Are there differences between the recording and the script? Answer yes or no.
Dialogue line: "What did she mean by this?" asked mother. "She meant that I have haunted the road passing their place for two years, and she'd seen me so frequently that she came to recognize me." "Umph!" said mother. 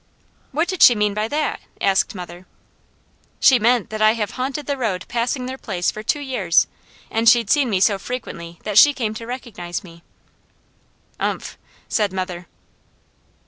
yes